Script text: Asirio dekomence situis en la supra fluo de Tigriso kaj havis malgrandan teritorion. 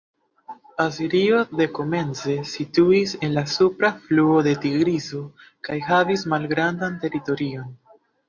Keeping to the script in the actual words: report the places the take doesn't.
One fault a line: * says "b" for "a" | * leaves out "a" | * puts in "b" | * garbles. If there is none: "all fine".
all fine